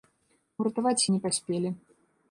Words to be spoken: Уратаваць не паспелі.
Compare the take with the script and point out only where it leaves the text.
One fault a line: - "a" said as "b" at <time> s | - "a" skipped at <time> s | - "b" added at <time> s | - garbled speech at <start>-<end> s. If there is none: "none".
none